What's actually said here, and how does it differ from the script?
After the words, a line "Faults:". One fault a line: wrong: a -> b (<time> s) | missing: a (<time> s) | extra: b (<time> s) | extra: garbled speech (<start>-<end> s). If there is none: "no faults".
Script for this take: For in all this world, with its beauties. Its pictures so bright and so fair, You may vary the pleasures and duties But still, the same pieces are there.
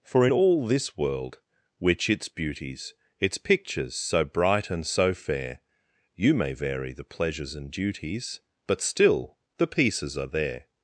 For in all this world, which its beauties. Its pictures so bright and so fair, You may vary the pleasures and duties But still, the pieces are there.
Faults:
wrong: with -> which (1.8 s)
missing: same (9.7 s)